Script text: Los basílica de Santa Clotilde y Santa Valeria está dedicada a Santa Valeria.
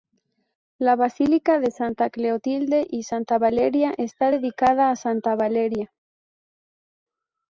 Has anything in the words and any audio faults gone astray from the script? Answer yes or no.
yes